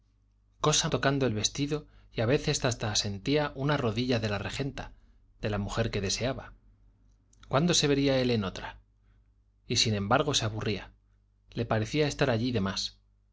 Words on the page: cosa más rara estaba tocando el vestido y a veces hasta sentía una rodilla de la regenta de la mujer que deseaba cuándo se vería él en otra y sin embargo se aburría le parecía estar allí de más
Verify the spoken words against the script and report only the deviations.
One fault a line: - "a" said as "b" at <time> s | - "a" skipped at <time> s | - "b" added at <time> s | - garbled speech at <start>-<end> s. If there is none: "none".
- "más rara estaba" skipped at 0.9 s